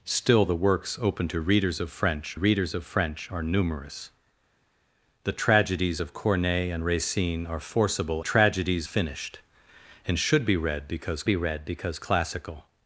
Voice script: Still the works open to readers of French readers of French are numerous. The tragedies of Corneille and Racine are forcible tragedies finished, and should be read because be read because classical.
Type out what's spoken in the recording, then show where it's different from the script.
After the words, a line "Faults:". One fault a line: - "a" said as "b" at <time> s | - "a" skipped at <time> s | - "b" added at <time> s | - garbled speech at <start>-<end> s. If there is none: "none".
Still the works open to readers of French readers of French are numerous. The tragedies of Corneille and Racine are forcible tragedies finished, and should be read because be read because classical.
Faults:
none